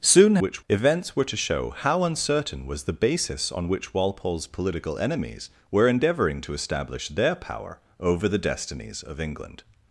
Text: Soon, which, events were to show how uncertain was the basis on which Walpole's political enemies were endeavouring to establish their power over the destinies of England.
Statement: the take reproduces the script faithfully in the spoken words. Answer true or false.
true